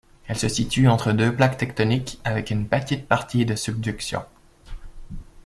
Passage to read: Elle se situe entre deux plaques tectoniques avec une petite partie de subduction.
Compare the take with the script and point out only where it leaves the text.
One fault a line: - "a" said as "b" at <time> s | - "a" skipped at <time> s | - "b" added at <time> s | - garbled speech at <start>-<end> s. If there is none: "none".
none